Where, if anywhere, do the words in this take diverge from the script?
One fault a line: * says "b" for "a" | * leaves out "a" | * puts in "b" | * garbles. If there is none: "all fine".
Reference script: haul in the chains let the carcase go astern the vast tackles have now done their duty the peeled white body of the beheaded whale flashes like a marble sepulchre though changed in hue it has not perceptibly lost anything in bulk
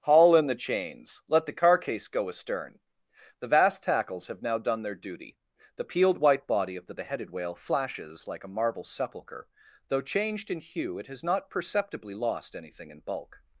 all fine